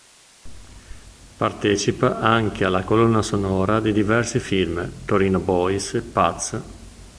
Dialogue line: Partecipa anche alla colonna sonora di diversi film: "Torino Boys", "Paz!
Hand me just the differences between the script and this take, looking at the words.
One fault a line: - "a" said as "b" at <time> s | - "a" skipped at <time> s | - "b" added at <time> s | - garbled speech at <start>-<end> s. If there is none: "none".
none